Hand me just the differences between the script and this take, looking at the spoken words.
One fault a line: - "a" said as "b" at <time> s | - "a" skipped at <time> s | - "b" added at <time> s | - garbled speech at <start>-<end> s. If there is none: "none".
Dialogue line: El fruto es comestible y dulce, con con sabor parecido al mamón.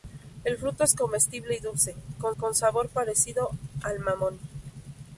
none